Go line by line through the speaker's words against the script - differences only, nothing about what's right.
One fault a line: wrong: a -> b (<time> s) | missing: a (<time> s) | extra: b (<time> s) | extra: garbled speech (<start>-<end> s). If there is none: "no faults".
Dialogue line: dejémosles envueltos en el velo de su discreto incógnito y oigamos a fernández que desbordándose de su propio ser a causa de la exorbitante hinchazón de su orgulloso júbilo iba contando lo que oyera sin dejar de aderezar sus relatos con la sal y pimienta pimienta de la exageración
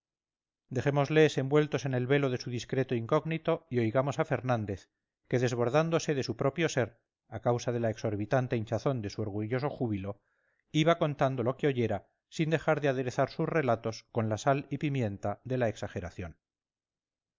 missing: pimienta (15.4 s)